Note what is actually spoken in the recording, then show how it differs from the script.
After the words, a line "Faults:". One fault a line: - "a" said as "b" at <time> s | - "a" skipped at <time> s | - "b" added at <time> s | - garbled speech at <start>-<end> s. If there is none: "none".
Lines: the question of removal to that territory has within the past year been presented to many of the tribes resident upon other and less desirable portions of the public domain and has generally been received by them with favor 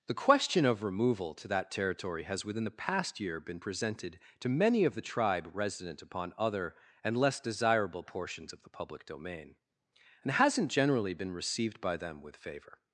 the question of removal to that territory has within the past year been presented to many of the tribe resident upon other and less desirable portions of the public domain and hasn't generally been received by them with favor
Faults:
- "tribes" said as "tribe" at 5.0 s
- "has" said as "hasn't" at 10.3 s